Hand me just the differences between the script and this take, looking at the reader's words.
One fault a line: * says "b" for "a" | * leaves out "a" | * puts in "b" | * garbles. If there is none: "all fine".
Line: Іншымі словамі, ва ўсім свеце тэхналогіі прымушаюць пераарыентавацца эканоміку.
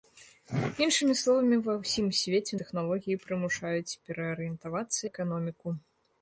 all fine